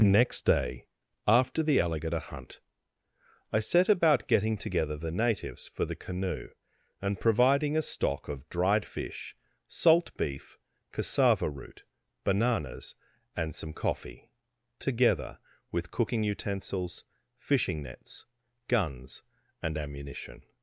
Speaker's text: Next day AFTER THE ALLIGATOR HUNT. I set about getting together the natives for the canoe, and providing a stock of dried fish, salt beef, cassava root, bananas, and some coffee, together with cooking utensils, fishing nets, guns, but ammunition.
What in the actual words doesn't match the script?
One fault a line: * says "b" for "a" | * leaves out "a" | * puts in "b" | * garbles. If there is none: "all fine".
* says "and" for "but"